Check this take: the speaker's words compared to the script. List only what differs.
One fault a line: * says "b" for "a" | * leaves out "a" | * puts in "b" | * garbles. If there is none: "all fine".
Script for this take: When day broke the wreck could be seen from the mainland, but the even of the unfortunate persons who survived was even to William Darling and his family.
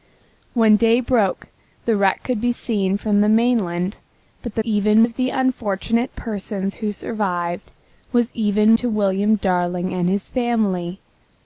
all fine